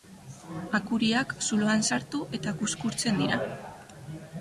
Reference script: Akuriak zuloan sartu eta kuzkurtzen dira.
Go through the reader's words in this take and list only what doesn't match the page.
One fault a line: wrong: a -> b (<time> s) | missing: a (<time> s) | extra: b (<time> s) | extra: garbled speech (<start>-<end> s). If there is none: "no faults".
no faults